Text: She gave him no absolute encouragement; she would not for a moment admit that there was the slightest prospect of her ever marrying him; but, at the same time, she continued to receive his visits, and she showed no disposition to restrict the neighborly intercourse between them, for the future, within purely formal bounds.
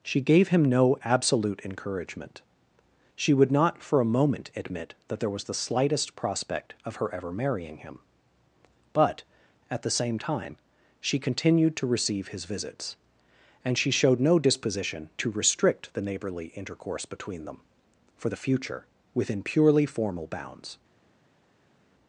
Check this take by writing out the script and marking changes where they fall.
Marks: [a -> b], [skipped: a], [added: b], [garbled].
She gave him no absolute encouragement; she would not for a moment admit that there was the slightest prospect of her ever marrying him; but, at the same time, she continued to receive his visits, and she showed no disposition to restrict the neighborly intercourse between them, for the future, within purely formal bounds.